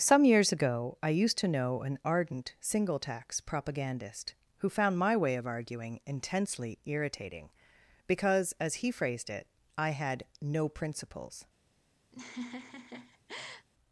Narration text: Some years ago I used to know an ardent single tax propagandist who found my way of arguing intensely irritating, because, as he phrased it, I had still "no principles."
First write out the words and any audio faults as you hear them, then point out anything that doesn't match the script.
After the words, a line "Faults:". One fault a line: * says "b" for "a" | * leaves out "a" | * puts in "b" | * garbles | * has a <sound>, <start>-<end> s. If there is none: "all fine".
Some years ago I used to know an ardent single tax propagandist who found my way of arguing intensely irritating, because, as he phrased it, I had "no principles."
Faults:
* leaves out "still"
* has a laugh, 12.1-13.7 s